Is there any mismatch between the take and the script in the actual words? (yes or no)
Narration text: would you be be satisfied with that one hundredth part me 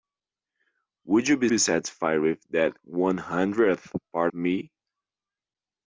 no